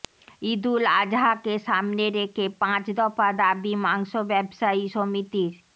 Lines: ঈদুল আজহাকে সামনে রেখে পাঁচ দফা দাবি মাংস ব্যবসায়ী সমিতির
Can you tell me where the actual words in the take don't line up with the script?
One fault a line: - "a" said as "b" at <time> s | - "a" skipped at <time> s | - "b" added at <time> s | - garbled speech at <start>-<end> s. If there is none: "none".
none